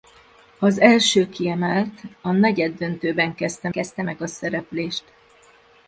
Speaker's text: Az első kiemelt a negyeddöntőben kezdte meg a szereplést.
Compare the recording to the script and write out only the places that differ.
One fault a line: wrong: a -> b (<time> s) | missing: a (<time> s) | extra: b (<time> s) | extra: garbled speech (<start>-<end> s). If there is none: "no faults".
extra: kezdte (3.7 s)